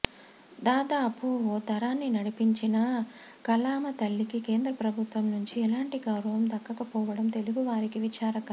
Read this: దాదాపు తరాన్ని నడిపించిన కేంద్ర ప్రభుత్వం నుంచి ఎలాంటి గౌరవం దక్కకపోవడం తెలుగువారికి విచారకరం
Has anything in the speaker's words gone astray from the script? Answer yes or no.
yes